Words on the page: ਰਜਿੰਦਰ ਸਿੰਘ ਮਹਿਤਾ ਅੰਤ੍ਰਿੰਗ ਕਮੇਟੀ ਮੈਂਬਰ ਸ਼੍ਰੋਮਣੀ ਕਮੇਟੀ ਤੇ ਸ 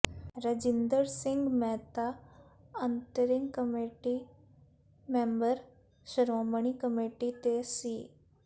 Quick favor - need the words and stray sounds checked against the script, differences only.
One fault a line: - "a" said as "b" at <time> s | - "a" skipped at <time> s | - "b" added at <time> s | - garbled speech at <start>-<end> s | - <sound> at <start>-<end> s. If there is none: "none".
none